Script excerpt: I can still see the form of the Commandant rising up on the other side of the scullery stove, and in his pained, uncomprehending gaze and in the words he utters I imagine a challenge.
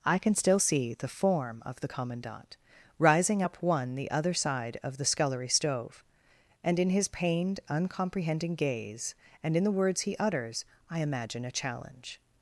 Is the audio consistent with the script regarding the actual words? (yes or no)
no